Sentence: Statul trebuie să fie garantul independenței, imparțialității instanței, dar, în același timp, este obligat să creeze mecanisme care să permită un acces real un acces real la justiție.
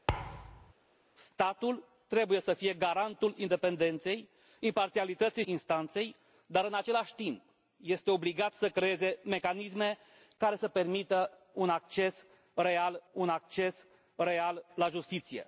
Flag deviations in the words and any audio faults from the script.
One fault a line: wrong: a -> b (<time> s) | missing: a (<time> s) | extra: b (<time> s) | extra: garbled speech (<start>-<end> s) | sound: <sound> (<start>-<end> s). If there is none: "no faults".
sound: thud (0.1-0.7 s)